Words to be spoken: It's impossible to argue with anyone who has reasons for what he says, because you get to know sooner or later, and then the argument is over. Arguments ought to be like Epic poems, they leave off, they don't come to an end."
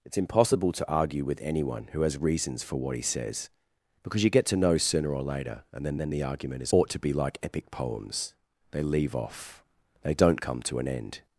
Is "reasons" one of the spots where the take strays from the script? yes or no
no